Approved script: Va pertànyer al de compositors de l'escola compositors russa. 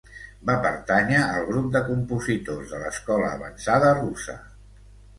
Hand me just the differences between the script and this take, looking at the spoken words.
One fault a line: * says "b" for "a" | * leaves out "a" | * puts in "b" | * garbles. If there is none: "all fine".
* puts in "grup"
* says "avançada" for "compositors"